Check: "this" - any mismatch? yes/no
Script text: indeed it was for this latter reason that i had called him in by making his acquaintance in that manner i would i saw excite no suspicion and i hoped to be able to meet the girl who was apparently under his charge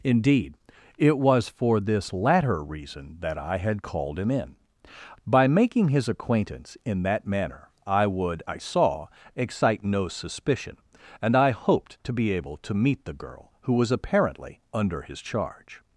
no